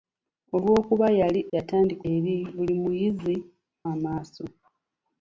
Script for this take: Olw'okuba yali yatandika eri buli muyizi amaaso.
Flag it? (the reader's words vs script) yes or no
no